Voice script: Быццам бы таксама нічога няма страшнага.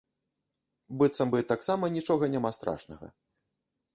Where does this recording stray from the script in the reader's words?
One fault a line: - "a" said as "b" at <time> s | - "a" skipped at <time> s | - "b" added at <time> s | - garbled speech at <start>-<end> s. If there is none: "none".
none